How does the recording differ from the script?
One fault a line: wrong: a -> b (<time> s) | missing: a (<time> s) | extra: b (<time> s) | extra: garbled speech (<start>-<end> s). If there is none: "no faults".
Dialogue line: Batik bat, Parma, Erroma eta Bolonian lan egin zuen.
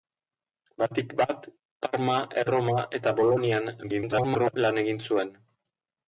extra: garbled speech (3.8-4.6 s)